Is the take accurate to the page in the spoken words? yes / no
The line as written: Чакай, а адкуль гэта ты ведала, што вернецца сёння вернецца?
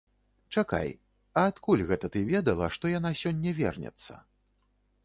no